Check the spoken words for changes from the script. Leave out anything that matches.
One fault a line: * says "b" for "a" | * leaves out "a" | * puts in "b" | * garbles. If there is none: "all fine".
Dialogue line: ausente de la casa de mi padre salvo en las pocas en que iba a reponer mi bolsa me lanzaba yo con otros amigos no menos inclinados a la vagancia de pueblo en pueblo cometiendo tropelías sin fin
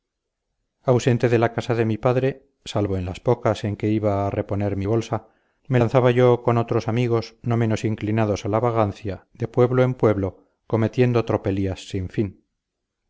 all fine